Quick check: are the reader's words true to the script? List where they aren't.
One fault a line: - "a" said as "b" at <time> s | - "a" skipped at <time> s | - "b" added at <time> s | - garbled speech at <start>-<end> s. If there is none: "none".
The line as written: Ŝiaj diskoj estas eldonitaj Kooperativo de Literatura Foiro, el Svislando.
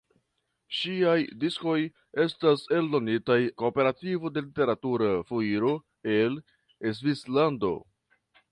none